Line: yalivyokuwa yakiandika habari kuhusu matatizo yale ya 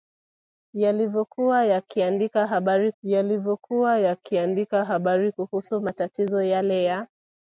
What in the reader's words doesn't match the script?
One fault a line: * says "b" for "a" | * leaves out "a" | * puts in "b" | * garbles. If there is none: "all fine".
* puts in "yalivyokuwa yakiandika habari"